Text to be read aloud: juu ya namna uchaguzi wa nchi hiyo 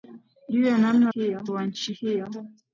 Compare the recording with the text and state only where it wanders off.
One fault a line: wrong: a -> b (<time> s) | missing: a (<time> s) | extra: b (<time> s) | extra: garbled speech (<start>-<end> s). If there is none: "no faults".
wrong: uchaguzi -> hiyo (1.1 s)